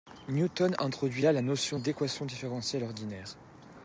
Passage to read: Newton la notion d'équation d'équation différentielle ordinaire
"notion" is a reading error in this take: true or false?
false